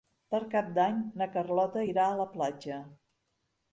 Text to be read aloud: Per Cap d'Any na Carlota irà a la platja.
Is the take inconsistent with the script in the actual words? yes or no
no